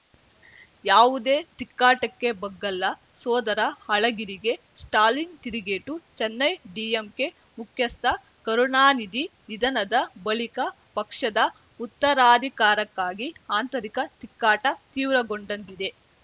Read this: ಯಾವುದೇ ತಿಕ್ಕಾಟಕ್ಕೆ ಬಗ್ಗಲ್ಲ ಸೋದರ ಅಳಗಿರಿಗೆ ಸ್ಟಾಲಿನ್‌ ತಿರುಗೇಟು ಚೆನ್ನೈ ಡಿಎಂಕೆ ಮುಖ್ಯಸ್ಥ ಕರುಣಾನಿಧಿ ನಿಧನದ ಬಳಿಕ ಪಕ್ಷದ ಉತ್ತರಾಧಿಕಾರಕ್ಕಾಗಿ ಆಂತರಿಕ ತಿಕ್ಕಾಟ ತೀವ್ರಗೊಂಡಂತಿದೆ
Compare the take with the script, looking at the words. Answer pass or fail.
pass